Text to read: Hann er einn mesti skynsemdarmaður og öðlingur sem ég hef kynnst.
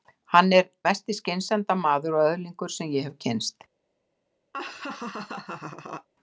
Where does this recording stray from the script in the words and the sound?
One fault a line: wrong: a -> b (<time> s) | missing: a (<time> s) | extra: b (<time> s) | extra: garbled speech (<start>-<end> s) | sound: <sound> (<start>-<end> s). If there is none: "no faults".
missing: einn (0.6 s)
sound: laugh (4.5-6.1 s)